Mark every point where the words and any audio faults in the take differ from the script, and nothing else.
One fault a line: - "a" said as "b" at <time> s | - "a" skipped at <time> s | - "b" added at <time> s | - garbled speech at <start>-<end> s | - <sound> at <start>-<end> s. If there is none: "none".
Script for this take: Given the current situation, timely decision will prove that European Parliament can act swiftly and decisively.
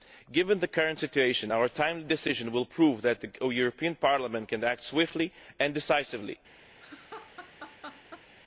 - "our" added at 1.5 s
- "the" added at 3.2 s
- laugh at 6.8-8.3 s